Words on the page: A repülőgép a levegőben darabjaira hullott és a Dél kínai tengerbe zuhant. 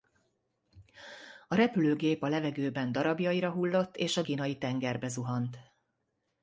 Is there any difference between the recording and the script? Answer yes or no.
yes